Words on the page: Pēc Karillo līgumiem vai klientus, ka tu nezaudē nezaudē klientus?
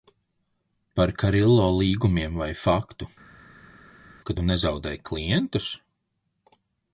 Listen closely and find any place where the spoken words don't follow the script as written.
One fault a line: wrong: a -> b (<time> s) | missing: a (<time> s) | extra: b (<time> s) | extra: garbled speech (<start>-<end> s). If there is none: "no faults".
wrong: Pēc -> Par (1.0 s)
wrong: klientus -> faktu (2.6 s)
missing: nezaudē (5.0 s)